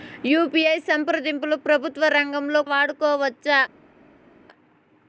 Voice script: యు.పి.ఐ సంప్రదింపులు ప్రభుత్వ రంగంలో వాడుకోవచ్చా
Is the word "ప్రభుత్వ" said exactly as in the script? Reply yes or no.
yes